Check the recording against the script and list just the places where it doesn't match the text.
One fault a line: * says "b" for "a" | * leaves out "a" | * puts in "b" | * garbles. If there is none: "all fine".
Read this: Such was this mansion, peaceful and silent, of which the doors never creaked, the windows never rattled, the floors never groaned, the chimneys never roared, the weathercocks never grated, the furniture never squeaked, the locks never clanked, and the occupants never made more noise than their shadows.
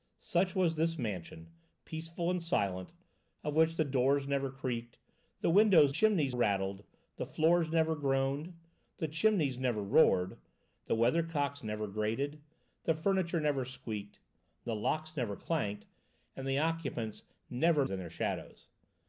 * says "chimneys" for "never"
* leaves out "made more noise"